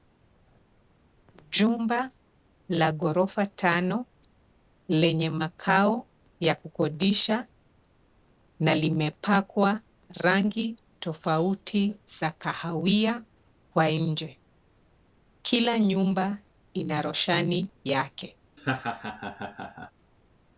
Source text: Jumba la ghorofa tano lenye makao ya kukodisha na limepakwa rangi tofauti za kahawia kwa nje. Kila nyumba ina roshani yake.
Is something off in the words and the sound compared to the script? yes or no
yes